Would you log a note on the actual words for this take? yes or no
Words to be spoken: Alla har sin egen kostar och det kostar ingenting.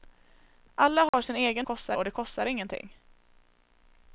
no